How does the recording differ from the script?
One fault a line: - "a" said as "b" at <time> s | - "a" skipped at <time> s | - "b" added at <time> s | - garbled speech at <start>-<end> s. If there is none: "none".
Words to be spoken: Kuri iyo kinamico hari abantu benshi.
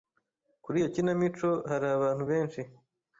none